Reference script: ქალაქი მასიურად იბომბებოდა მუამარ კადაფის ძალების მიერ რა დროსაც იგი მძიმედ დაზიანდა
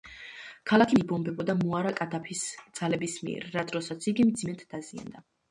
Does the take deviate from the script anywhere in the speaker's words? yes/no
yes